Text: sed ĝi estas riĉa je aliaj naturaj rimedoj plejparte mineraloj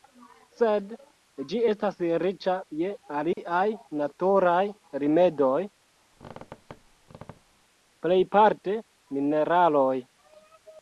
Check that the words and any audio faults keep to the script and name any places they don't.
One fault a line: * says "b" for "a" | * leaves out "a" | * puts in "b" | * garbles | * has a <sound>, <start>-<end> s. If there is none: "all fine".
* has a dropout, 3.3-3.4 s
* has a squeak, 6.1-7.6 s